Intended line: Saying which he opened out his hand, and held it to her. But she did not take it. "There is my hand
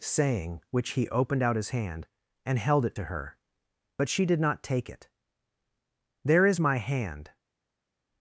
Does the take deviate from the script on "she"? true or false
false